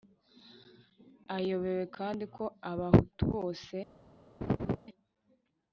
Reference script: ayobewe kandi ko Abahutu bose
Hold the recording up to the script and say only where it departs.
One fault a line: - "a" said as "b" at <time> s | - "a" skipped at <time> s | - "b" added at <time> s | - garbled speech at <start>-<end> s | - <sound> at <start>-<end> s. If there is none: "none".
- laugh at 4.4-4.8 s